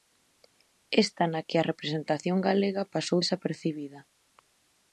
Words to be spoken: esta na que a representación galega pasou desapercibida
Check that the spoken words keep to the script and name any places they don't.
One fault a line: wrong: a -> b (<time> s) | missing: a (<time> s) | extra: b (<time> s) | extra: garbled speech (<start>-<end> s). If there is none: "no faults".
no faults